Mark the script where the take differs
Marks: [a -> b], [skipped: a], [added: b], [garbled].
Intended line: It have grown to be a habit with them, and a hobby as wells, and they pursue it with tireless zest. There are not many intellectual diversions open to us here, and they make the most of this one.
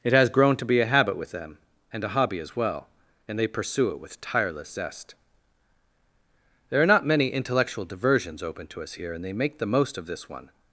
It [have -> has] grown to be a habit with them, and a hobby as [wells, -> well] and they pursue it with tireless zest. There are not many intellectual diversions open to us here, and they make the most of this one.